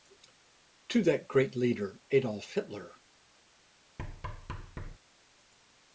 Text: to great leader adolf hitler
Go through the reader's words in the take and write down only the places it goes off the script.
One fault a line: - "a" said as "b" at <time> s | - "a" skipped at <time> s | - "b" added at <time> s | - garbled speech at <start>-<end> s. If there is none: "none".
- "that" added at 1.0 s